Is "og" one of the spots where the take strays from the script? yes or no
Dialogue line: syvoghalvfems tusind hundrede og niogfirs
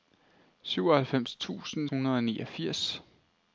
no